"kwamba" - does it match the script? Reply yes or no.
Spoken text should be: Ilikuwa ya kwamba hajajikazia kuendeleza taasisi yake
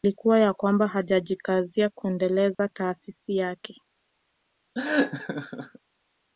yes